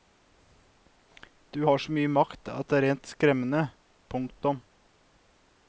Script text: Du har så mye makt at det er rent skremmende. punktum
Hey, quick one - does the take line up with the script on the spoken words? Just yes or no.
yes